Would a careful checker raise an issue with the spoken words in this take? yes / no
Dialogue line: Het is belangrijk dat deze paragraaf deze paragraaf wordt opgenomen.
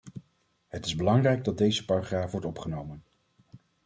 yes